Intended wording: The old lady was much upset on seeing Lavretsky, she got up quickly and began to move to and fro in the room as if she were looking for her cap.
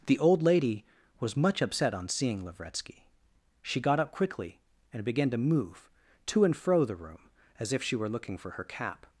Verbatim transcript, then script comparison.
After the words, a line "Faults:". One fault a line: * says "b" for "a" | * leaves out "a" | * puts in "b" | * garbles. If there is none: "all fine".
The old lady was much upset on seeing Lavretsky, she got up quickly and began to move to and fro the room as if she were looking for her cap.
Faults:
* leaves out "in"